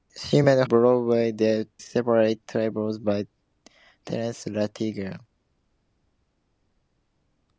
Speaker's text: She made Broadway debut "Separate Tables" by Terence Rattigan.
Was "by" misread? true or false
false